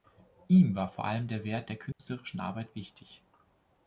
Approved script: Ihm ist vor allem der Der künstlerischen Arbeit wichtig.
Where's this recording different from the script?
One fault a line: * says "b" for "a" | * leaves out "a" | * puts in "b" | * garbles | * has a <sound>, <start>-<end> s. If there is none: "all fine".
* says "war" for "ist"
* puts in "Wert"
* has a dropout, 1.9-2.0 s